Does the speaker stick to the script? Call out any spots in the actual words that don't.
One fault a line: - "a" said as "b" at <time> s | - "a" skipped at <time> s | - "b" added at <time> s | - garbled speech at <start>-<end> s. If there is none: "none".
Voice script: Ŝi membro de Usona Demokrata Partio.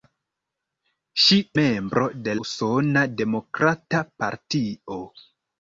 none